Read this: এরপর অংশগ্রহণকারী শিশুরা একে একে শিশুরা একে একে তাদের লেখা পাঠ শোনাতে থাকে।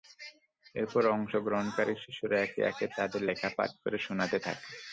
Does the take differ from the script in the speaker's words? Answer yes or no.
yes